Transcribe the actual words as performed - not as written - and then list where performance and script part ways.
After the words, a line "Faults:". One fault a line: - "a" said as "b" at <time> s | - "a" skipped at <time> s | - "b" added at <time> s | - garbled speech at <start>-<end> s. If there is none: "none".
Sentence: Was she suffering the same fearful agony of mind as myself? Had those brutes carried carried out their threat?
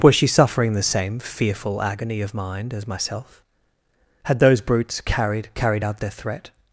Was she suffering the same fearful agony of mind as myself? Had those brutes carried carried out their threat?
Faults:
none